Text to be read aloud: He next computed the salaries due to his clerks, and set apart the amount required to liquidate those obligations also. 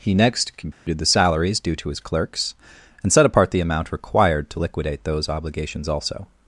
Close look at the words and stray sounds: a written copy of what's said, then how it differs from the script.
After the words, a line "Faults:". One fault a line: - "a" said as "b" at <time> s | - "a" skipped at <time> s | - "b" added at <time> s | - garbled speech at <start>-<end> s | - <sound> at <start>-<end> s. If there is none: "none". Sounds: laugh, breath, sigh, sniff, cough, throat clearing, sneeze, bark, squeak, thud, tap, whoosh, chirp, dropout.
He next computed the salaries due to his clerks, and set apart the amount required to liquidate those obligations also.
Faults:
- dropout at 0.7-0.9 s